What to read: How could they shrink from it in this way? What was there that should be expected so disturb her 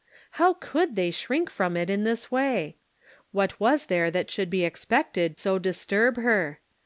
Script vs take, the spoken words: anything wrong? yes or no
no